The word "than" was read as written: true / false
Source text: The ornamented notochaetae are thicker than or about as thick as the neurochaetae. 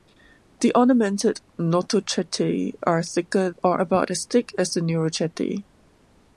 false